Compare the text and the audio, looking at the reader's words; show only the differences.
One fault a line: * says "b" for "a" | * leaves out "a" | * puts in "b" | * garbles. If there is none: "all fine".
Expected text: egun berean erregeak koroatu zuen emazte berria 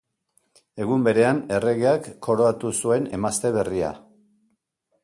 all fine